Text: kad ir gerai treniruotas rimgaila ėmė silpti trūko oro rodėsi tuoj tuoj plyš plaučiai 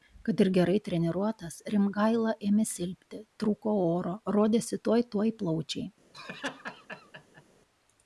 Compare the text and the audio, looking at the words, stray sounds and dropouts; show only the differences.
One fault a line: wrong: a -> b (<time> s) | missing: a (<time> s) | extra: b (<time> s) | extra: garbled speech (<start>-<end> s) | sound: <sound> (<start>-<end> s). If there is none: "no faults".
missing: plyš (5.3 s)
sound: laugh (6.1-7.4 s)